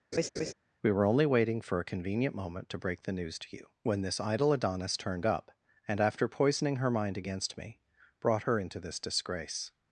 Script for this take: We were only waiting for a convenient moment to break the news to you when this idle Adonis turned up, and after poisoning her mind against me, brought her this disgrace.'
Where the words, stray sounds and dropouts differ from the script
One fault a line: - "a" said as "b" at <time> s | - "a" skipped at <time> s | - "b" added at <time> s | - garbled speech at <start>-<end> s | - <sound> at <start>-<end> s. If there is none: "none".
- laugh at 0.1-0.5 s
- "into" added at 8.6 s